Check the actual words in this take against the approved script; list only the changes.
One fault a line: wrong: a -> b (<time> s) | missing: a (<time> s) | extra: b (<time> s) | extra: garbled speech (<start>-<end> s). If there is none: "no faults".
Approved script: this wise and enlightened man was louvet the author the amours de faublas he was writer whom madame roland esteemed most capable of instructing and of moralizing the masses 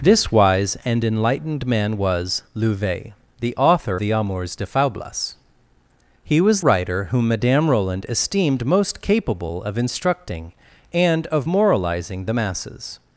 no faults